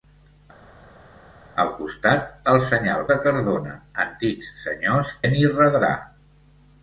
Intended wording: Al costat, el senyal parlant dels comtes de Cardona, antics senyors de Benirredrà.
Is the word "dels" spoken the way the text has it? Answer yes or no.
no